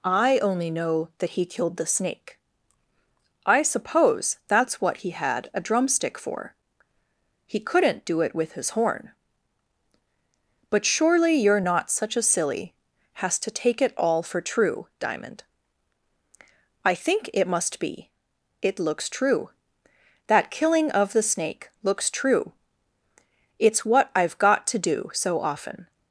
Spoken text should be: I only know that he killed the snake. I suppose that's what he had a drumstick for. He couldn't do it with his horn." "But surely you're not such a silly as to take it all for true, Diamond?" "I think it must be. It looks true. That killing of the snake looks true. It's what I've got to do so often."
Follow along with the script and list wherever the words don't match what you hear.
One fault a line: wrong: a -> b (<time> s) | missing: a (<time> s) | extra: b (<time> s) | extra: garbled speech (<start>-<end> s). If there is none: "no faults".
wrong: as -> has (13.2 s)